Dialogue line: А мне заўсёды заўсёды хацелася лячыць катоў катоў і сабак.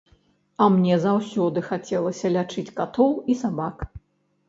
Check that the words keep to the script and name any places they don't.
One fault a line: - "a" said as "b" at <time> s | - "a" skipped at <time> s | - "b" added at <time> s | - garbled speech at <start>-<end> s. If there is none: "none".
- "заўсёды" skipped at 1.6 s
- "катоў" skipped at 3.1 s